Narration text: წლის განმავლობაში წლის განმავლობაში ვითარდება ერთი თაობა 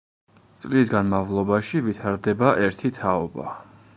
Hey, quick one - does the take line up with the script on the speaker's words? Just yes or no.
no